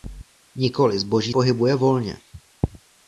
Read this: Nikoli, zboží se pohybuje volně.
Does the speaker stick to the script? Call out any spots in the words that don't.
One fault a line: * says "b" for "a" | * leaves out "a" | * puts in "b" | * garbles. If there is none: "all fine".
* leaves out "se"